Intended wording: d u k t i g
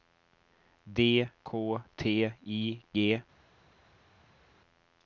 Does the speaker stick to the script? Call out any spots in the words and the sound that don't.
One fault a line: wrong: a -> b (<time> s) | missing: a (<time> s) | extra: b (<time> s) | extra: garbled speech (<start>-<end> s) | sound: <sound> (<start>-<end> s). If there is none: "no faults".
missing: u (1.3 s)